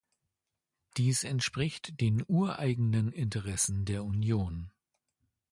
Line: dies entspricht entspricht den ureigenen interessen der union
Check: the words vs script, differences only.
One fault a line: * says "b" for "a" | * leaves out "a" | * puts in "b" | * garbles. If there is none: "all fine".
* leaves out "entspricht"